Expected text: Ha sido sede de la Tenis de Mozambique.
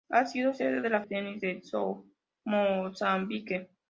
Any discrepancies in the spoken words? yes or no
no